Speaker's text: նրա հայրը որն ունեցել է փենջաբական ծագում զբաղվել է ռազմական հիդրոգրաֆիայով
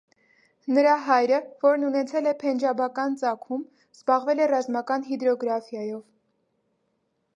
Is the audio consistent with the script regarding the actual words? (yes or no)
yes